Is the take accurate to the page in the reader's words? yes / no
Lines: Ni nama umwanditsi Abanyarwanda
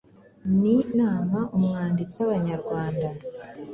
yes